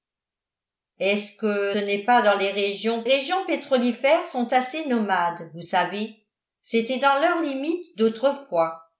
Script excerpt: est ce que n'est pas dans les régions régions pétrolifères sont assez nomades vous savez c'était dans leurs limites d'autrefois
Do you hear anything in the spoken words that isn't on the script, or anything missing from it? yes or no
no